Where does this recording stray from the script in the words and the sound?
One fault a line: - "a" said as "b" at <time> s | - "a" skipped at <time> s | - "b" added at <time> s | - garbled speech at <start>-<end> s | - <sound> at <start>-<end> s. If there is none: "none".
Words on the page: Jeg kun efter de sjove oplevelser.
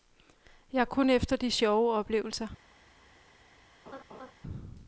- laugh at 3.9-4.3 s